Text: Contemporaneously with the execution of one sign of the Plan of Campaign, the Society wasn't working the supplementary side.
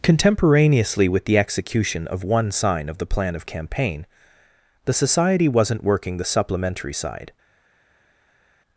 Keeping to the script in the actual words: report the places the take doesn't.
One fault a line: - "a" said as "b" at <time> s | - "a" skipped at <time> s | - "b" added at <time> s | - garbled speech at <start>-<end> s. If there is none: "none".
none